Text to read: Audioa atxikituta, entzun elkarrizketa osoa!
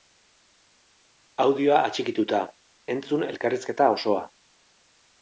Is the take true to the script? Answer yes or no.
yes